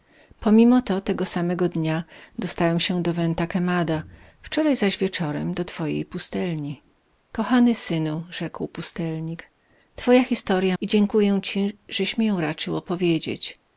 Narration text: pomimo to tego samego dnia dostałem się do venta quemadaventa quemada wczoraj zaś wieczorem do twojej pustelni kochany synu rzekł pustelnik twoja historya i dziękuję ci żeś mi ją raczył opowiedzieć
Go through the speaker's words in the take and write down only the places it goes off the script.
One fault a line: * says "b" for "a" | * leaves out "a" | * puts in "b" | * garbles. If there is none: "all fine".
all fine